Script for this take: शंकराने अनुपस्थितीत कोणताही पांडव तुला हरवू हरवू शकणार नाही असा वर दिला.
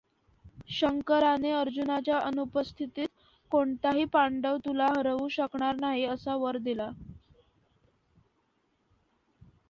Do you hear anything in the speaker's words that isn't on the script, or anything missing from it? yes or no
yes